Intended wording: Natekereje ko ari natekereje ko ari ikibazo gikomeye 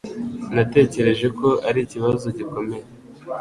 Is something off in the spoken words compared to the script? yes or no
yes